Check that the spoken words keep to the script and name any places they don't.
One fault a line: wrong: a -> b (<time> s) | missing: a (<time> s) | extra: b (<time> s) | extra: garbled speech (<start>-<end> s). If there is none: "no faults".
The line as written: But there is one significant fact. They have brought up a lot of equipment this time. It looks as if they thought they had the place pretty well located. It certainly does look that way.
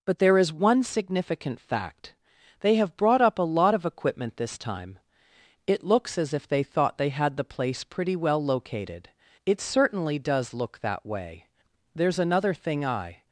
extra: There's another thing I (11.9 s)